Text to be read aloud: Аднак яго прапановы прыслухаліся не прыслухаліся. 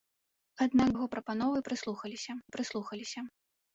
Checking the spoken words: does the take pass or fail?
pass